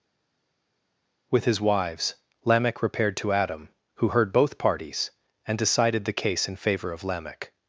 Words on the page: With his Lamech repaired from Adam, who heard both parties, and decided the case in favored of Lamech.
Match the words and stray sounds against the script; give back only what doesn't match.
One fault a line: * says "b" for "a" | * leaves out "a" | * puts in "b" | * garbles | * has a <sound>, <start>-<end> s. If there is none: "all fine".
* puts in "wives"
* says "to" for "from"
* says "favor" for "favored"